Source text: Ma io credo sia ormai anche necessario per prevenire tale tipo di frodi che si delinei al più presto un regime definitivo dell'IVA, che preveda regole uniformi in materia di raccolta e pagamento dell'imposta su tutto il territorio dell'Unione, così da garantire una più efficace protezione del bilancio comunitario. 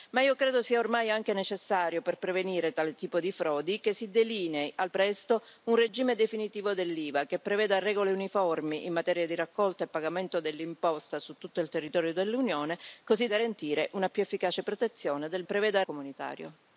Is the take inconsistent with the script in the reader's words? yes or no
yes